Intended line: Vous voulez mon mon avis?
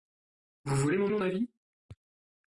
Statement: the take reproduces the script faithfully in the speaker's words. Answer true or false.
true